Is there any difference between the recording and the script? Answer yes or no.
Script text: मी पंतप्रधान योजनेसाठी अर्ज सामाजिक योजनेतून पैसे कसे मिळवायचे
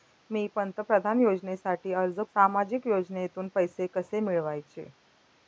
no